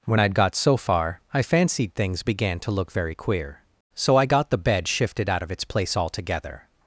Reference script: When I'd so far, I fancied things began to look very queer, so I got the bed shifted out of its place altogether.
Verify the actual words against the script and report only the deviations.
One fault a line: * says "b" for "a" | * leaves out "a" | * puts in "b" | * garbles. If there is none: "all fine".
* puts in "got"